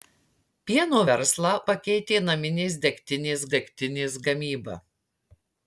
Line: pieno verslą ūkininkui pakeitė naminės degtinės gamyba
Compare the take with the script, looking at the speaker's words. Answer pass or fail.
fail